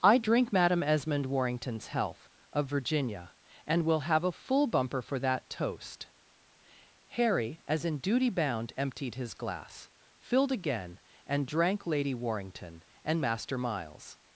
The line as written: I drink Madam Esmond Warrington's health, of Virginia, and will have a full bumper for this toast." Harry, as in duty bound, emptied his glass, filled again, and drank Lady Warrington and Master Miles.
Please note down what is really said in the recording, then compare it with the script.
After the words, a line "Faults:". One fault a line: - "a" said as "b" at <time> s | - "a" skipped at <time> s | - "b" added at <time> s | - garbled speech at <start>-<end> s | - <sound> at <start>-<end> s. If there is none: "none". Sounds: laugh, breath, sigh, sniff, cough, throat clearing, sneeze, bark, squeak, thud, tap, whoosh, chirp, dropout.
I drink Madam Esmond Warrington's health, of Virginia, and will have a full bumper for that toast." Harry, as in duty bound, emptied his glass, filled again, and drank Lady Warrington and Master Miles.
Faults:
- "this" said as "that" at 5.2 s